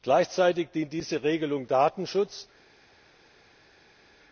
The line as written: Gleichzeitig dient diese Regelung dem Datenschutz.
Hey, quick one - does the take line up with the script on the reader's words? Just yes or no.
no